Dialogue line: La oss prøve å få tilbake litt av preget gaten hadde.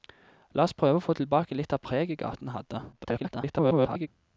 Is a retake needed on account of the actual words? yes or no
yes